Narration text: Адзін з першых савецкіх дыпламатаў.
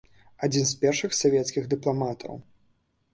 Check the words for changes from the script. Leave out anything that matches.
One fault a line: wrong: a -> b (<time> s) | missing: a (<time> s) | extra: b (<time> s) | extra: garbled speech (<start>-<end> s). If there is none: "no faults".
no faults